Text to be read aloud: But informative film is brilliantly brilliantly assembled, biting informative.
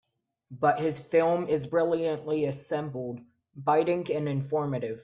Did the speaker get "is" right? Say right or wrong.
right